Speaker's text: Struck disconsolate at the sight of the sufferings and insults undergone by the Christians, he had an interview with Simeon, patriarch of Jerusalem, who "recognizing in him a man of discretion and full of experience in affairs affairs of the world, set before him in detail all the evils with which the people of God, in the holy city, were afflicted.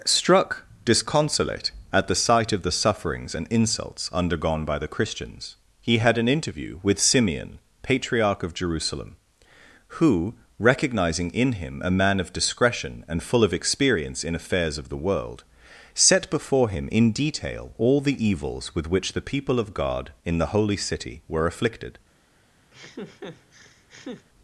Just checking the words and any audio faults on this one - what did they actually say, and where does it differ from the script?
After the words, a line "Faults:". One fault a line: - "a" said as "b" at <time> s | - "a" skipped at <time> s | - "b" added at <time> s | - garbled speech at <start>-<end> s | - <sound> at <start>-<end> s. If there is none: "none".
Struck disconsolate at the sight of the sufferings and insults undergone by the Christians, he had an interview with Simeon, patriarch of Jerusalem, who "recognizing in him a man of discretion and full of experience in affairs of the world, set before him in detail all the evils with which the people of God, in the holy city, were afflicted.
Faults:
- "affairs" skipped at 14.8 s
- laugh at 22.7-24.3 s